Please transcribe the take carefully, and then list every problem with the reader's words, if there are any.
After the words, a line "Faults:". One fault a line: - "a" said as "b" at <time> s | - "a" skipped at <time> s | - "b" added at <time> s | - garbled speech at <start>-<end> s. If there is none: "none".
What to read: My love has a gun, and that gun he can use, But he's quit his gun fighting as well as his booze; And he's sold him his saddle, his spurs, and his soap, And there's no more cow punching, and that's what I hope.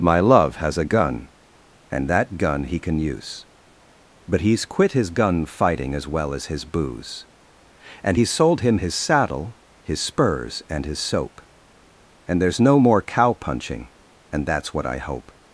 My love has a gun, and that gun he can use, But he's quit his gun fighting as well as his booze; And he's sold him his saddle, his spurs, and his soap, And there's no more cow punching, and that's what I hope.
Faults:
none